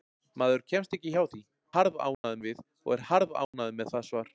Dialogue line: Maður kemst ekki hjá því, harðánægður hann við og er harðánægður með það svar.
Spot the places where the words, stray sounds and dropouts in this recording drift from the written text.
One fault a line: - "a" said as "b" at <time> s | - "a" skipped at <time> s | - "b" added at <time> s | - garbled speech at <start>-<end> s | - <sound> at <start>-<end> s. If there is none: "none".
- dropout at 2.1-2.2 s
- dropout at 3.4-3.5 s